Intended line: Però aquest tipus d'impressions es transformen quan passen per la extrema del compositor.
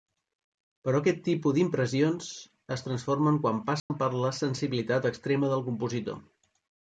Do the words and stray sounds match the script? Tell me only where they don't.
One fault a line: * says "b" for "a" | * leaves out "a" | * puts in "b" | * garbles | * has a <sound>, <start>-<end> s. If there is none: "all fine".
* has a dropout, 3.8-3.9 s
* puts in "sensibilitat"